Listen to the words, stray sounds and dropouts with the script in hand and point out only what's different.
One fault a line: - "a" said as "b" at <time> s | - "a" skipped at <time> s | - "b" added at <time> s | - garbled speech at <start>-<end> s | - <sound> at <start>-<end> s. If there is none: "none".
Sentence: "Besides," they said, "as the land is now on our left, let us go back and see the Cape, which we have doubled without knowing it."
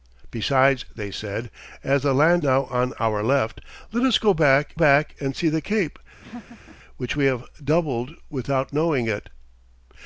- "is" skipped at 2.4 s
- "back" added at 4.7 s
- laugh at 6.2-6.8 s